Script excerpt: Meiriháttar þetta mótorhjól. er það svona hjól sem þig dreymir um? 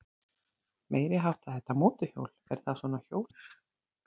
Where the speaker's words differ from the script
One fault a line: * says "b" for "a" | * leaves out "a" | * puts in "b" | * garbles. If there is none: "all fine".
* leaves out "sem þig dreymir"